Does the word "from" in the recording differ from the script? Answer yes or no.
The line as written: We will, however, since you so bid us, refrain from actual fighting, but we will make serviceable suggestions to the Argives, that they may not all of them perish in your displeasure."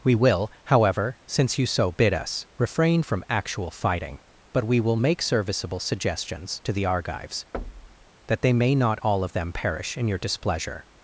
no